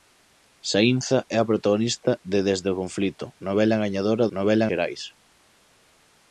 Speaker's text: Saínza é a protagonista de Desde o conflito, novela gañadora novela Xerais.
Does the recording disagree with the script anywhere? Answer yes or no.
no